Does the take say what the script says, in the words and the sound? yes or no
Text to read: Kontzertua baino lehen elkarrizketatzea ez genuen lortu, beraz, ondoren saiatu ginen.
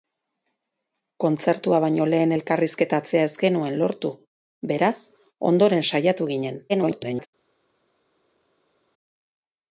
no